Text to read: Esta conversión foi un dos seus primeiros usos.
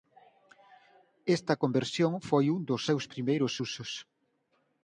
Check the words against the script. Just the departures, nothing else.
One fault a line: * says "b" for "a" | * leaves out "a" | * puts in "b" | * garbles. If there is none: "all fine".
all fine